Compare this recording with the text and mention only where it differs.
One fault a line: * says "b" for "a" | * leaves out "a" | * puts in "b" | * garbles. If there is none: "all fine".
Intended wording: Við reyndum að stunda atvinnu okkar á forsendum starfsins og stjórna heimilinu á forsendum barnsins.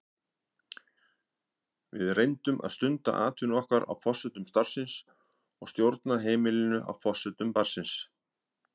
all fine